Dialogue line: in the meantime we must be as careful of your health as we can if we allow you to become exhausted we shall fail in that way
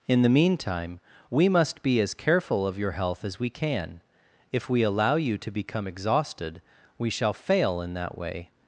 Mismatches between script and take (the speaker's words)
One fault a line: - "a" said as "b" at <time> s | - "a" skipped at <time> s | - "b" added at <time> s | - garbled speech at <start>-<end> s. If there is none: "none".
none